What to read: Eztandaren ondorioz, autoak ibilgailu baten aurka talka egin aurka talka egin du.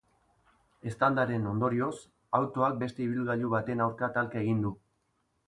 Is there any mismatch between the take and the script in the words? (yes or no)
yes